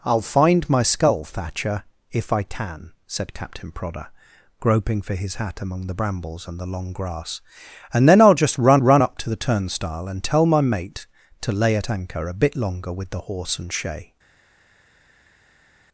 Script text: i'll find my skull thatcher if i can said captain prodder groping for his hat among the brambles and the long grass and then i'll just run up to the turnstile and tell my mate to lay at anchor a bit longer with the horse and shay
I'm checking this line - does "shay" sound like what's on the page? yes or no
yes